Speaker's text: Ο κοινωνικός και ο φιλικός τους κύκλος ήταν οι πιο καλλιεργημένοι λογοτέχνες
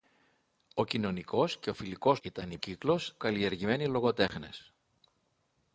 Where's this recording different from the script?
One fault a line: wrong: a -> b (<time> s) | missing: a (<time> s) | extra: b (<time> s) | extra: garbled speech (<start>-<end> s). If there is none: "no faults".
missing: τους κύκλος (2.2 s)
wrong: πιο -> κύκλος (2.6 s)